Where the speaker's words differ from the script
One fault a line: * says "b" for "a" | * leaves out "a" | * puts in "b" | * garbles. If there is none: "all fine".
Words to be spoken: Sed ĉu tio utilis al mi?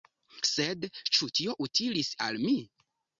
all fine